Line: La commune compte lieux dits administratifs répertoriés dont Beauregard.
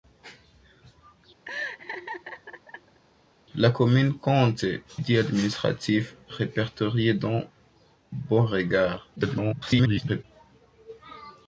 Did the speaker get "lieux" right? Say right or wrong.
wrong